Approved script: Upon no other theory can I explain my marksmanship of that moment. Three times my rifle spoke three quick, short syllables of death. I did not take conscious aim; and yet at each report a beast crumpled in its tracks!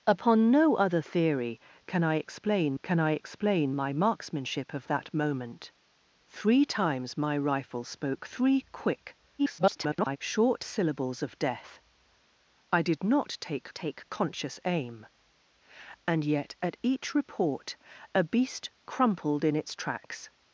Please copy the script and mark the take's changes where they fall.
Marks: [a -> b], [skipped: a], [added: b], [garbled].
Upon no other theory can I explain [added: can I explain] my marksmanship of that moment. Three times my rifle spoke three quick, [garbled] short syllables of death. I did not take [added: take] conscious aim; and yet at each report a beast crumpled in its tracks!